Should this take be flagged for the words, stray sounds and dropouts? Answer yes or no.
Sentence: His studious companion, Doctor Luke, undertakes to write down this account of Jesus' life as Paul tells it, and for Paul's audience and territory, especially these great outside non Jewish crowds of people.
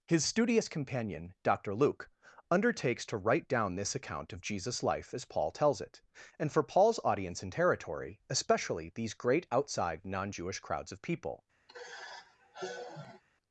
yes